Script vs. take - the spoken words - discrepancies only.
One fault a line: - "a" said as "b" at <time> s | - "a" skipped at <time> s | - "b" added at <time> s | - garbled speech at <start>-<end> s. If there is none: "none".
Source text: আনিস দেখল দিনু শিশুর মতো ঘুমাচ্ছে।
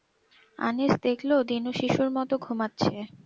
none